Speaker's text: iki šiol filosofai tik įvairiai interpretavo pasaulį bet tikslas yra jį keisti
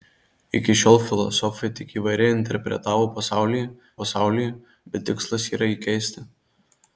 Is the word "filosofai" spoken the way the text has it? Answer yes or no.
yes